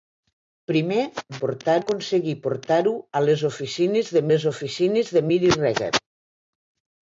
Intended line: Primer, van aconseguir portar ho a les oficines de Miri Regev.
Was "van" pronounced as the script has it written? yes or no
no